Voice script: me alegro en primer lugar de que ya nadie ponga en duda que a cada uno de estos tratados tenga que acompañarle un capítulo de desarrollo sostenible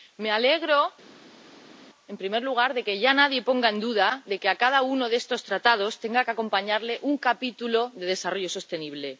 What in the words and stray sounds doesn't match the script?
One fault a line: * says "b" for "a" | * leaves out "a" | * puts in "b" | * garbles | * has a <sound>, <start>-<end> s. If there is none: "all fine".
all fine